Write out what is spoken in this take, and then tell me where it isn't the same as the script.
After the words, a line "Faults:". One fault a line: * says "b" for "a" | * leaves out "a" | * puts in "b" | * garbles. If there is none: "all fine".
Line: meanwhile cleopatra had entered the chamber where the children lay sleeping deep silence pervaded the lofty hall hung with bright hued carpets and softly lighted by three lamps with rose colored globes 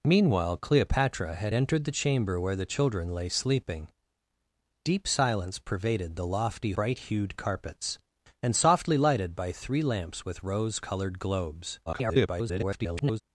meanwhile cleopatra had entered the chamber where the children lay sleeping deep silence pervaded the lofty bright hued carpets and softly lighted by three lamps with rose colored globes [garbled]
Faults:
* leaves out "hall hung with"
* garbles